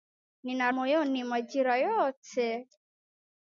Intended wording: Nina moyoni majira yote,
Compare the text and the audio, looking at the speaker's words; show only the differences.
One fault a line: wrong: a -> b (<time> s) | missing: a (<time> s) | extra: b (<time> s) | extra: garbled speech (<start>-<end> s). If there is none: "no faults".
no faults